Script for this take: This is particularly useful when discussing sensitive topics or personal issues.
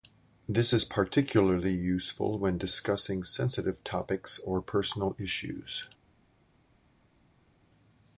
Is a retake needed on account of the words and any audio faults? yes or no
no